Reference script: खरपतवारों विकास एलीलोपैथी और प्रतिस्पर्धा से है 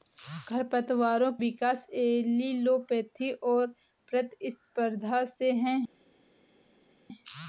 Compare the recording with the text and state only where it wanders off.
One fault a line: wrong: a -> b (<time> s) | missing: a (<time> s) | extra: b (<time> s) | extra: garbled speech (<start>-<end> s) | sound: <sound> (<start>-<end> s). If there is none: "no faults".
no faults